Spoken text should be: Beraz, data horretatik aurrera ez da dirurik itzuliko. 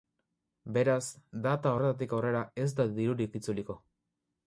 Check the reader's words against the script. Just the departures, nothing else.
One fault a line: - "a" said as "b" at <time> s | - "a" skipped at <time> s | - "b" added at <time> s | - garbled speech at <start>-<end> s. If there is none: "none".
none